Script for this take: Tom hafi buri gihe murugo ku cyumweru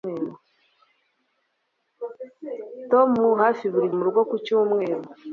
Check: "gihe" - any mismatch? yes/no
yes